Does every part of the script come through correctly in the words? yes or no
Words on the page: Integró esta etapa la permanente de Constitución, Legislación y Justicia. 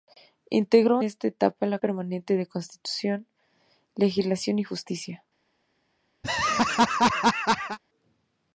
yes